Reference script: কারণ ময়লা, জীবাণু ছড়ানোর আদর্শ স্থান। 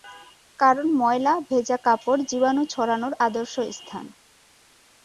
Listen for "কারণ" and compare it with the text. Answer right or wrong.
right